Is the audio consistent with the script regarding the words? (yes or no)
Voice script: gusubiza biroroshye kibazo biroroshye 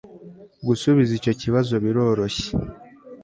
no